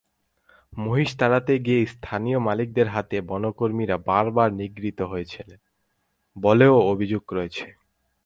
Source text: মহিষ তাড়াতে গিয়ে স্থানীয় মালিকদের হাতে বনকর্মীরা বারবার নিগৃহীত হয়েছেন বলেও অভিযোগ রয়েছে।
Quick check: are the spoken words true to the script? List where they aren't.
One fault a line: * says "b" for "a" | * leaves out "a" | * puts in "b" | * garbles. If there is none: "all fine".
all fine